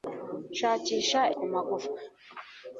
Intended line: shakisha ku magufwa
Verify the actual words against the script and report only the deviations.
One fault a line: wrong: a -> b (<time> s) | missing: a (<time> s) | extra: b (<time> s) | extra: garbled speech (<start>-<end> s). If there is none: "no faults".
no faults